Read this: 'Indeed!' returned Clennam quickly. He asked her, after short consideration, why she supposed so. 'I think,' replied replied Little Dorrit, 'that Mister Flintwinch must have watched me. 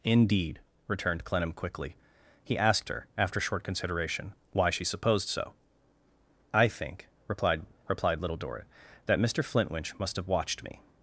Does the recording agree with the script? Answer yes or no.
yes